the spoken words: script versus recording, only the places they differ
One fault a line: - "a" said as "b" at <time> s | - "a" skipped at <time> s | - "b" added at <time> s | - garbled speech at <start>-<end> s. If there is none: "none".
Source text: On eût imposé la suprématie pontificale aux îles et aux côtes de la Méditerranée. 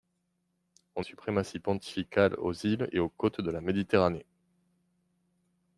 - "eût imposé la" skipped at 1.1 s